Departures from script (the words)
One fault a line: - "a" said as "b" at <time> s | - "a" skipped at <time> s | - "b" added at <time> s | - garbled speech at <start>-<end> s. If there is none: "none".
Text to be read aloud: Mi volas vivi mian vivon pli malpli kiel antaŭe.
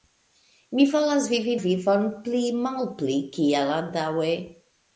- "mian" skipped at 1.5 s